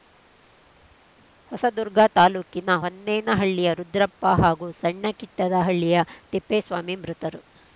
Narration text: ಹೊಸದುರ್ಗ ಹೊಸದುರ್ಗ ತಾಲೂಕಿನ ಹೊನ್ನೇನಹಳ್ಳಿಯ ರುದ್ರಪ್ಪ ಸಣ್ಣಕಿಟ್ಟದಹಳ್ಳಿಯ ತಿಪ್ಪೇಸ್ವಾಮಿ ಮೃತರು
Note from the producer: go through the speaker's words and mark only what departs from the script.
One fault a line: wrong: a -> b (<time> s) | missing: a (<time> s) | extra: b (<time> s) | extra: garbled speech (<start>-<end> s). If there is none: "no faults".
missing: ಹೊಸದುರ್ಗ (2.0 s)
extra: ಹಾಗೂ (4.4 s)